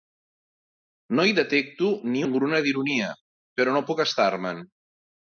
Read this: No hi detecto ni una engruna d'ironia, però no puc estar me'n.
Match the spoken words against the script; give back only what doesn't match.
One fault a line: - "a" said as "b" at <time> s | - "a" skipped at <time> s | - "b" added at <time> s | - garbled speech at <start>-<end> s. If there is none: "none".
- "una" skipped at 2.2 s